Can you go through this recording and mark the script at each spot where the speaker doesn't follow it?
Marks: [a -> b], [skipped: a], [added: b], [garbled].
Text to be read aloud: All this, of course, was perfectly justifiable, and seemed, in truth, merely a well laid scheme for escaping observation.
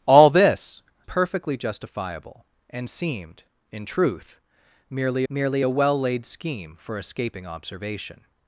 All this, [skipped: of course, was] perfectly justifiable, and seemed, in truth, merely [added: merely] a well laid scheme for escaping observation.